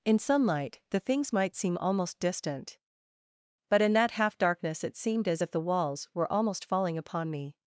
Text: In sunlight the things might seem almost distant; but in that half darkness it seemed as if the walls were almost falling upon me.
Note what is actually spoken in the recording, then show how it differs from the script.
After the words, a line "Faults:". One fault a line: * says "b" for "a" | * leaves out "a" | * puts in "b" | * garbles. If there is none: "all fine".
In sunlight the things might seem almost distant; but in that half darkness it seemed as if the walls were almost falling upon me.
Faults:
all fine